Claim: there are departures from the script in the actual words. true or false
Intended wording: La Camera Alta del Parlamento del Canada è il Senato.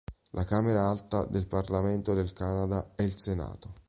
false